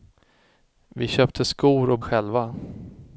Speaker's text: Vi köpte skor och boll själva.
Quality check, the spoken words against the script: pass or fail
fail